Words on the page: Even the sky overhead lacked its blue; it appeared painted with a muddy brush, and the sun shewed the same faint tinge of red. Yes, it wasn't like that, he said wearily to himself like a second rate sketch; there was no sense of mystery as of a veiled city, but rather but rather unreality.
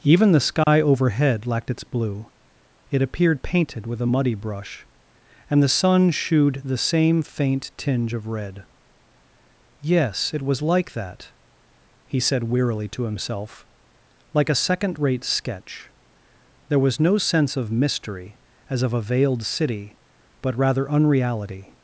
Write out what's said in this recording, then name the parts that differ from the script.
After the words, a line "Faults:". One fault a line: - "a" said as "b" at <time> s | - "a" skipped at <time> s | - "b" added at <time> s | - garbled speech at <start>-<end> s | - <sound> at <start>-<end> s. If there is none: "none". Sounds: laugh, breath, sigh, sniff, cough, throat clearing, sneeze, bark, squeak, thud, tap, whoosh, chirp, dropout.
Even the sky overhead lacked its blue; it appeared painted with a muddy brush, and the sun shewed the same faint tinge of red. Yes, it was like that, he said wearily to himself like a second rate sketch; there was no sense of mystery as of a veiled city, but rather unreality.
Faults:
- dropout at 0.6-0.7 s
- "wasn't" said as "was" at 10.4 s
- "but rather" skipped at 20.9 s